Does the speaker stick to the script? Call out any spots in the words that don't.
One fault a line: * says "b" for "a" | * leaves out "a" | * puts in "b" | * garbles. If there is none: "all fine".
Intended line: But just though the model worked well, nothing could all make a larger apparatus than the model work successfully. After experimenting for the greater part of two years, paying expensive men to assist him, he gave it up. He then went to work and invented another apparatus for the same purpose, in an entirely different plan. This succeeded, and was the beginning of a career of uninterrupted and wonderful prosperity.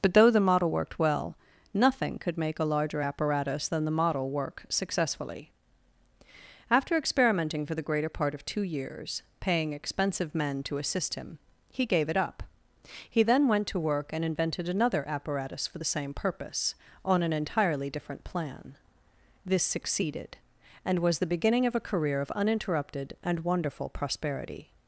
* leaves out "just"
* leaves out "all"
* says "on" for "in"